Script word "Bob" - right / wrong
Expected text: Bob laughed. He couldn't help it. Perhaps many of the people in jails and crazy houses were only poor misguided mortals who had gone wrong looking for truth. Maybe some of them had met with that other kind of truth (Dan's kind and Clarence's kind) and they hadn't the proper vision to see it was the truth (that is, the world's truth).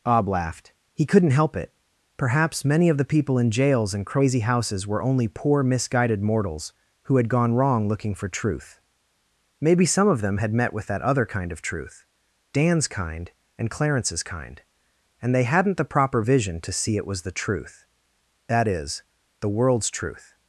wrong